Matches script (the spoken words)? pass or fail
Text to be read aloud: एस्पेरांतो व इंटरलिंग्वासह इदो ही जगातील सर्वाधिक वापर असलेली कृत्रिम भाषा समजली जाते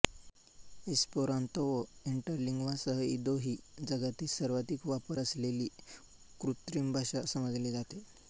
pass